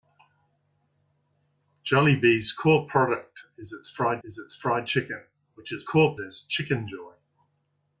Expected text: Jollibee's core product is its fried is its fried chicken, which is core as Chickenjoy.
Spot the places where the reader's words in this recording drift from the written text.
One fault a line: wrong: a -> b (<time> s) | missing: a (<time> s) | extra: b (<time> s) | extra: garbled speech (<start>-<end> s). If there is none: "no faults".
no faults